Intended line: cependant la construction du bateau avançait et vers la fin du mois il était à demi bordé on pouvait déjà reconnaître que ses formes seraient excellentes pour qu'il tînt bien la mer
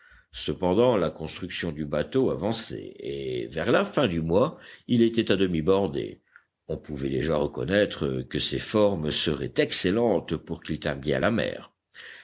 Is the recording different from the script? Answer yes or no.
no